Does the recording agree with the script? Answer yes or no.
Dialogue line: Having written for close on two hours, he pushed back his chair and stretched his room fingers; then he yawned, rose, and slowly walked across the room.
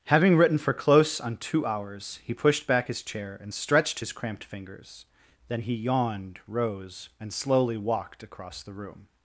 no